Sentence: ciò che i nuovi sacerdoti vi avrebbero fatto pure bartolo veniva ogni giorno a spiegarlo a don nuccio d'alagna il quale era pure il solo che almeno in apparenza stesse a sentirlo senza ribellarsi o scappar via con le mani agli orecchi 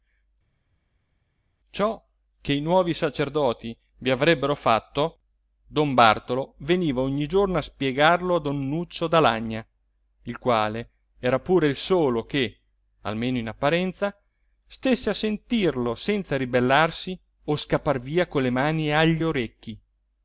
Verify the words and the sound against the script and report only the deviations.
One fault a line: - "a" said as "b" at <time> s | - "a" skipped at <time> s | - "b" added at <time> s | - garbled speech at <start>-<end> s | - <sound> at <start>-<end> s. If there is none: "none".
- "pure" said as "don" at 5.7 s